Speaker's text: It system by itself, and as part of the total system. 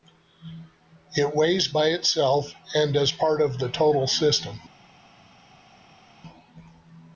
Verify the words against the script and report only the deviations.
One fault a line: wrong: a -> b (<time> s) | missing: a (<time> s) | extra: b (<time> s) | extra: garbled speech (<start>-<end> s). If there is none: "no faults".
wrong: system -> weighs (1.4 s)